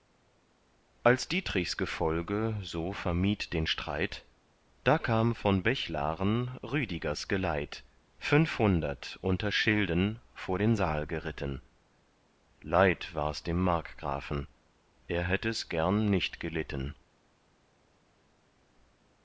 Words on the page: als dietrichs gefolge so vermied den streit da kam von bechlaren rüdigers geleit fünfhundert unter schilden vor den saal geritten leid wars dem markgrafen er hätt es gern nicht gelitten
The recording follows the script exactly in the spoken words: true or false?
true